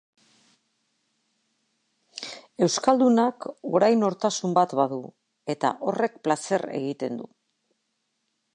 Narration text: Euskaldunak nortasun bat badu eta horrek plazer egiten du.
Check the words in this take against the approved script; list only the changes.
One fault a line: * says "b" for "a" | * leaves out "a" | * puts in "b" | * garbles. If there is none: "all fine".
* puts in "orain"